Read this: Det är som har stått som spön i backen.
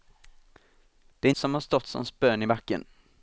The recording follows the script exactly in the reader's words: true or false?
true